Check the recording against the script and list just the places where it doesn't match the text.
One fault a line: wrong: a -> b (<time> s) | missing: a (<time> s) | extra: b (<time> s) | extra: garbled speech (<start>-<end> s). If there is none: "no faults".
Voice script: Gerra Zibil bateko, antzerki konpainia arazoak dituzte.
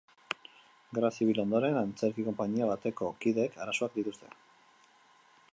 wrong: bateko -> ondoren (1.4 s)
extra: bateko kideek (2.7 s)